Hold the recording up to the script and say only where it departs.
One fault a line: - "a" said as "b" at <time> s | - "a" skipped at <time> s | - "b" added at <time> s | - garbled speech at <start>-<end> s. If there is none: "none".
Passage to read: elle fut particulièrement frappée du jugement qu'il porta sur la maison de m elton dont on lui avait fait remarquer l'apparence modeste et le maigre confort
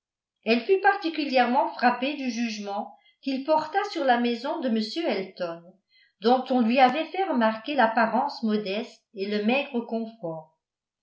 none